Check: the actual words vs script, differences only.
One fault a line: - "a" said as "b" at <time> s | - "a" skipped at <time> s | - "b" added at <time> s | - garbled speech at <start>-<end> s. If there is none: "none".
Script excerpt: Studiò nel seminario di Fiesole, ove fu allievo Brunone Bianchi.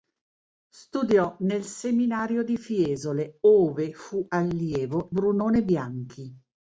none